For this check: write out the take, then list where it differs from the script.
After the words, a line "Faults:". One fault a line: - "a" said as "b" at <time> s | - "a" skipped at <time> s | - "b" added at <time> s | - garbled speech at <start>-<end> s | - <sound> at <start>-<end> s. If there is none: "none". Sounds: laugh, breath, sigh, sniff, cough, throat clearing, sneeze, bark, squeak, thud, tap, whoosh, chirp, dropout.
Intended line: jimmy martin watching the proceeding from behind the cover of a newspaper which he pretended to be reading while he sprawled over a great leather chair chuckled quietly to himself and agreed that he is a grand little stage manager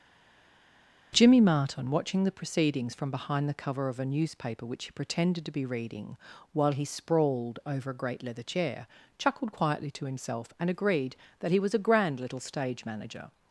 jimmy martin watching the proceedings from behind the cover of a newspaper which he pretended to be reading while he sprawled over a great leather chair chuckled quietly to himself and agreed that he was a grand little stage manager
Faults:
- "proceeding" said as "proceedings" at 2.3 s
- "is" said as "was" at 11.6 s